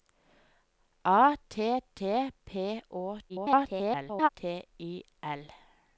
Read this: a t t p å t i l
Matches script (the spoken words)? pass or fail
fail